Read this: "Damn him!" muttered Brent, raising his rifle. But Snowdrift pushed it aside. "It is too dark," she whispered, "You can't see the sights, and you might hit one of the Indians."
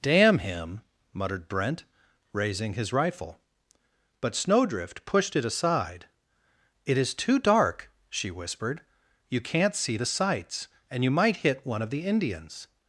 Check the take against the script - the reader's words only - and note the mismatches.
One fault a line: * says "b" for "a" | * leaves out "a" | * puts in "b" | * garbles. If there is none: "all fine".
all fine